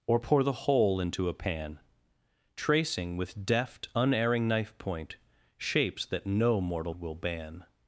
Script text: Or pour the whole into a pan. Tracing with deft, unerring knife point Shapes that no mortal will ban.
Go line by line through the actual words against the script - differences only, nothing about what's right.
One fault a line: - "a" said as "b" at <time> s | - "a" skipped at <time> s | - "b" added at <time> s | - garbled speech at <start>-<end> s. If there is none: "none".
none